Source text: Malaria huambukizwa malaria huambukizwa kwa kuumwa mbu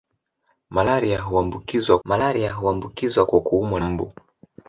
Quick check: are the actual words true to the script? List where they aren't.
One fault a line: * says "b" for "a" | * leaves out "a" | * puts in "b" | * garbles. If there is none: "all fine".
all fine